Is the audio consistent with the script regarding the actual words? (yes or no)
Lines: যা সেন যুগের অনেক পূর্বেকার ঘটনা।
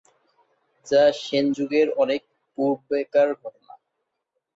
yes